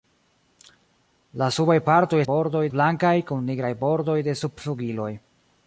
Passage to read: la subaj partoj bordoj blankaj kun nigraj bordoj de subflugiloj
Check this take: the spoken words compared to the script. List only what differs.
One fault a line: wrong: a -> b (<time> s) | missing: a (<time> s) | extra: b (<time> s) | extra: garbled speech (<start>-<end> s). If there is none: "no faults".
no faults